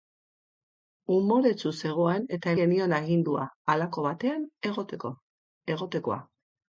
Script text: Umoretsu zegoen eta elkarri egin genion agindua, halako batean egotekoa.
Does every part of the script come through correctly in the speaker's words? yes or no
no